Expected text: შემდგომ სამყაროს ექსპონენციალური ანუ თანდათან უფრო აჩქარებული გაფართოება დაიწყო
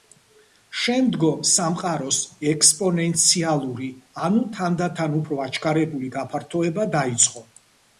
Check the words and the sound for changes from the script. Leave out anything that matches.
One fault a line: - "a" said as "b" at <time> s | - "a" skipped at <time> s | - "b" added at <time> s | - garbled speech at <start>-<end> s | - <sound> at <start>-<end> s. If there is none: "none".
none